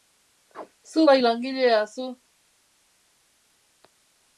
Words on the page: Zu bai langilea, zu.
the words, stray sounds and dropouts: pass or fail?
pass